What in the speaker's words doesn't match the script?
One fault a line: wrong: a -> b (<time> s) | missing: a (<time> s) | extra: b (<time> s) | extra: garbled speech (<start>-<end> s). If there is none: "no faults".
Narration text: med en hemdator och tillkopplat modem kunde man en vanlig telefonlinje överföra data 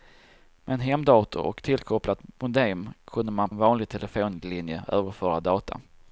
no faults